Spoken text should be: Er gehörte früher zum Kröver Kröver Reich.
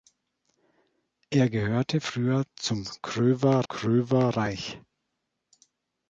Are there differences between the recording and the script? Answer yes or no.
no